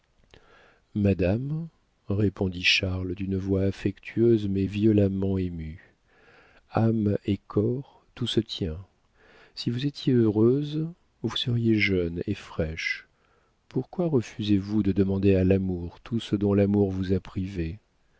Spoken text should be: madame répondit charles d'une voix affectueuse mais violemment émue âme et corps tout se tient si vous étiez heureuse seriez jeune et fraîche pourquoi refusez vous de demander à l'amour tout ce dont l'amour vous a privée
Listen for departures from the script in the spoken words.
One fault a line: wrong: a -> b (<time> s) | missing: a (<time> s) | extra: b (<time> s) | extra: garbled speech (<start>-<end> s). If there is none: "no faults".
extra: vous (11.2 s)